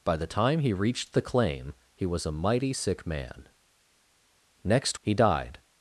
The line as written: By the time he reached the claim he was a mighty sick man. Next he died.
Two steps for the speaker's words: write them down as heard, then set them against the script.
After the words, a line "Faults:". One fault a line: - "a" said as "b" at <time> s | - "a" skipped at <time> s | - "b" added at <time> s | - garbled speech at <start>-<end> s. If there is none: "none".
By the time he reached the claim he was a mighty sick man. Next he died.
Faults:
none